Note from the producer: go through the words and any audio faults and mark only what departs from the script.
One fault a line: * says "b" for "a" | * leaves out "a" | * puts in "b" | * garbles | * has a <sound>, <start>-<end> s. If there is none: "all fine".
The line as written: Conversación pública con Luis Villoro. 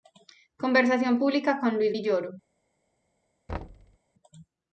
* has a thud, 3.5-4.0 s